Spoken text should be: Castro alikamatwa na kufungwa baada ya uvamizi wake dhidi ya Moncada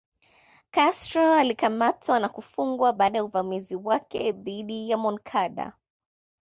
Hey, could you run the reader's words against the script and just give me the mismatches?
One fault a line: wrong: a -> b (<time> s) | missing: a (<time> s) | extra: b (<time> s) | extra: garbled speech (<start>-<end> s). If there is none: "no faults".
no faults